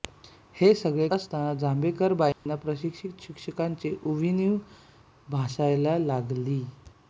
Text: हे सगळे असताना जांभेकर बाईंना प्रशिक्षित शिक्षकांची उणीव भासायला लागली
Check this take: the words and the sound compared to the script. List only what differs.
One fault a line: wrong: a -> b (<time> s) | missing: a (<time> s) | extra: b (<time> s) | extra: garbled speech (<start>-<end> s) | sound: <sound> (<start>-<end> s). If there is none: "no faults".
sound: dropout (2.3-2.5 s)